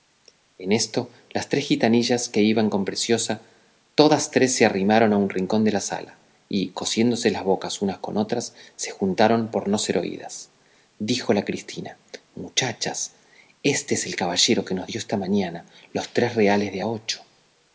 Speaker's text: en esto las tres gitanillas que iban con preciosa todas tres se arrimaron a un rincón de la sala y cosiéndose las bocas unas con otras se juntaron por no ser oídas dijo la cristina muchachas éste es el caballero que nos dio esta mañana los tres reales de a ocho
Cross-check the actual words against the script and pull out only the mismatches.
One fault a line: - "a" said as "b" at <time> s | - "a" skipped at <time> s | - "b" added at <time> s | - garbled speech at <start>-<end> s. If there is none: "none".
none